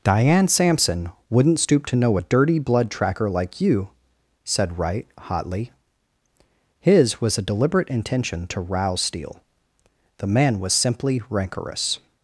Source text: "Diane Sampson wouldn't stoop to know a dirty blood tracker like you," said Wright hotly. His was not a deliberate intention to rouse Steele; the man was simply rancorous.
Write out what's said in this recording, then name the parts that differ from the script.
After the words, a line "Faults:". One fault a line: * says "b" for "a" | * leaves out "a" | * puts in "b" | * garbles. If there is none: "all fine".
"Diane Sampson wouldn't stoop to know a dirty blood tracker like you," said Wright hotly. His was a deliberate intention to rouse Steele; the man was simply rancorous.
Faults:
* leaves out "not"